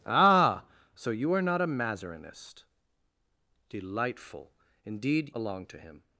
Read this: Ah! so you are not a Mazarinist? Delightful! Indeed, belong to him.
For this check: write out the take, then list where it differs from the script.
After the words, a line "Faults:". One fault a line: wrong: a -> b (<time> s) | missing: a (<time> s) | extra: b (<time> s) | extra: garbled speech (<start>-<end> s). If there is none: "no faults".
Ah! so you are not a Mazarinist? Delightful! Indeed, belong to him.
Faults:
no faults